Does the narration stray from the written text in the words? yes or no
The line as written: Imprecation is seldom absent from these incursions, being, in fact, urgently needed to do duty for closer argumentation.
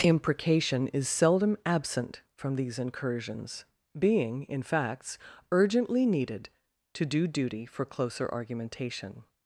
yes